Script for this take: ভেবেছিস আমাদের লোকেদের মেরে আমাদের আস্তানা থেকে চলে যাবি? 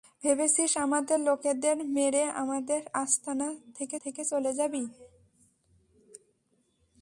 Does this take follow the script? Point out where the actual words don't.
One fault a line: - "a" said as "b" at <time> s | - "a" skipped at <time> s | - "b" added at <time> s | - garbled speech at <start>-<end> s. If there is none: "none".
- "থেকে" added at 4.0 s